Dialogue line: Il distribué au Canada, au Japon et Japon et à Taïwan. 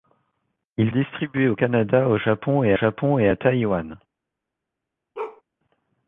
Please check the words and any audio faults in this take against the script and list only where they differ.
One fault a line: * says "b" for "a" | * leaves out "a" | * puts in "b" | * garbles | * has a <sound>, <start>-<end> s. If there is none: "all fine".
* has a bark, 5.1-5.4 s